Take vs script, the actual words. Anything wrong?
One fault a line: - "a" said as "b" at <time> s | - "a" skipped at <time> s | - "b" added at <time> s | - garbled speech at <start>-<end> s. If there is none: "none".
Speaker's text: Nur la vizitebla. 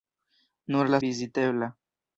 none